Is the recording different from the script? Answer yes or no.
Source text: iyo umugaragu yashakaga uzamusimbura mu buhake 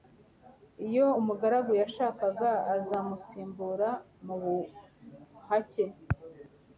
no